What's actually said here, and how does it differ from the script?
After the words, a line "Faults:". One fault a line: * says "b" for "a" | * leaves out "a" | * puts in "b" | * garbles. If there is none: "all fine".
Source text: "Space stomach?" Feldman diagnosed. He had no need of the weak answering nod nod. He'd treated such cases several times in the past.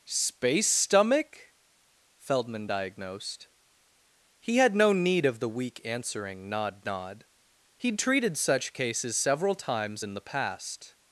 "Space stomach?" Feldman diagnosed. He had no need of the weak answering nod nod. He'd treated such cases several times in the past.
Faults:
all fine